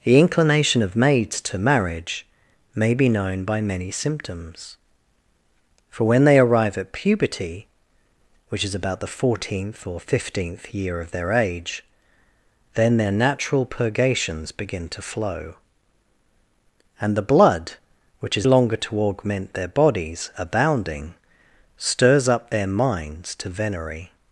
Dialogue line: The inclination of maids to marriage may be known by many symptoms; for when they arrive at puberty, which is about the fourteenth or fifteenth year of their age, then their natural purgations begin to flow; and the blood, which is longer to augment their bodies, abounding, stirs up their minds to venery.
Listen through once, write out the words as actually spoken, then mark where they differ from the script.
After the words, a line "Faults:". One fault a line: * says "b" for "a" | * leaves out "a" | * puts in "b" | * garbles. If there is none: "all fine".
The inclination of maids to marriage may be known by many symptoms; for when they arrive at puberty, which is about the fourteenth or fifteenth year of their age, then their natural purgations begin to flow; and the blood, which is longer to augment their bodies, abounding, stirs up their minds to venery.
Faults:
all fine